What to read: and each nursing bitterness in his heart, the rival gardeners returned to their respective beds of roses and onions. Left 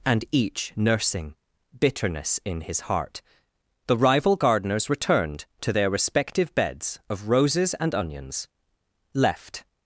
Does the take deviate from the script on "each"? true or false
false